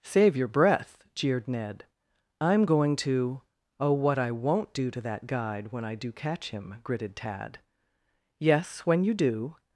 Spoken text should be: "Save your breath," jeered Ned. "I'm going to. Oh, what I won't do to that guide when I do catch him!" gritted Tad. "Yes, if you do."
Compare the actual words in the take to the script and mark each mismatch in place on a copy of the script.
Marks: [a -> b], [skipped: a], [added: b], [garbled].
"Save your breath," jeered Ned. "I'm going to. Oh, what I won't do to that guide when I do catch him!" gritted Tad. "Yes, [if -> when] you do."